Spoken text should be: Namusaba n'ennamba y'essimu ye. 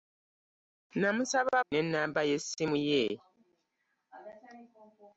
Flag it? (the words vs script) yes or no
no